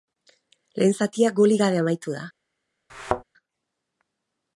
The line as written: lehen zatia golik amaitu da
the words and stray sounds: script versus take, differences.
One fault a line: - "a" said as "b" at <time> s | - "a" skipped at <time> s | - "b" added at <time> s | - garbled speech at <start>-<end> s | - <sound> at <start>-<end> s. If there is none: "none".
- "gabe" added at 1.6 s
- thud at 2.9-3.2 s